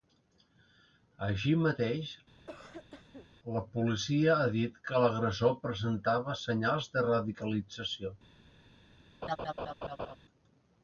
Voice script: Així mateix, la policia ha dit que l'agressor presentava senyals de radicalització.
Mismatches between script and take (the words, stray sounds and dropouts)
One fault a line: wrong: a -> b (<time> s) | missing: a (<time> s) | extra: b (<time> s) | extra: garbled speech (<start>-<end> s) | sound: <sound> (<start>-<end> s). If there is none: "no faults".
sound: cough (2.4-3.3 s)
sound: laugh (9.2-10.2 s)